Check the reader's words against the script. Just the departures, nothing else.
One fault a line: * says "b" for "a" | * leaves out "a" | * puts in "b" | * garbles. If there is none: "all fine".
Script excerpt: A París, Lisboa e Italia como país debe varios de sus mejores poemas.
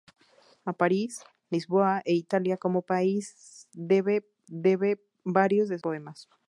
* puts in "debe"
* leaves out "sus mejores"